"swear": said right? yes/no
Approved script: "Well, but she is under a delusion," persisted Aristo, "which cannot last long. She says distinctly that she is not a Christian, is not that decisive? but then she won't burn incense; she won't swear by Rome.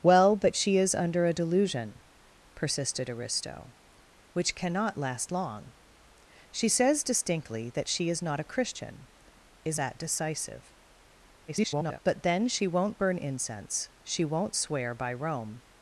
yes